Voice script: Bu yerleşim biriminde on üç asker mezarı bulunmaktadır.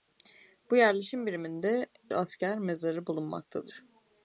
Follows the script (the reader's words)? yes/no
no